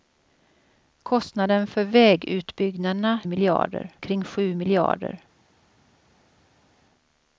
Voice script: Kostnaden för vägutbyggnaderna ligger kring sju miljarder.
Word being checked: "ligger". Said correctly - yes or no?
no